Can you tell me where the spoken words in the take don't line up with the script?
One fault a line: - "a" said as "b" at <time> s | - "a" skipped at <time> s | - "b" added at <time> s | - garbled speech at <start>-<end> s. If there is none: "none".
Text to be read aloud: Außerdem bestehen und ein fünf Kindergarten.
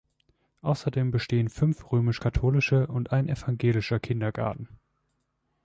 - "fünf römisch katholische" added at 1.5 s
- "fünf" said as "evangelischer" at 3.3 s